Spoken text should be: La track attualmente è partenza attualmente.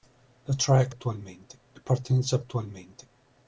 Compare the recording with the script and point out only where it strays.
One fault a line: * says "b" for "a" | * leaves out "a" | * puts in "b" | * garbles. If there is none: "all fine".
all fine